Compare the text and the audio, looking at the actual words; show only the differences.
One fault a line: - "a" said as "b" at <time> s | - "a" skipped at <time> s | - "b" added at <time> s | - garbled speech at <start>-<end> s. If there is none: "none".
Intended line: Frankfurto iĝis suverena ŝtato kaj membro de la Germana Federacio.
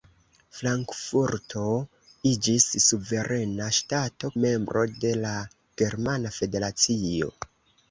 - "kaj" skipped at 4.3 s